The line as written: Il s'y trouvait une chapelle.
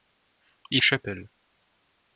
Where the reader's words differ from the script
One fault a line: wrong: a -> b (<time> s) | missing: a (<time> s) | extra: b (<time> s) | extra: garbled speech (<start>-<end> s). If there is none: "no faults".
missing: s'y trouvait une (0.8 s)